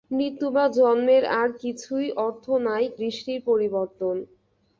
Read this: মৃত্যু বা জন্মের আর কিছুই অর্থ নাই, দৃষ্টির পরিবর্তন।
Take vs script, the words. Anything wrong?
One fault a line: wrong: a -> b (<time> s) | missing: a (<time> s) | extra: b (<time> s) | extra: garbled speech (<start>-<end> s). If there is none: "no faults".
no faults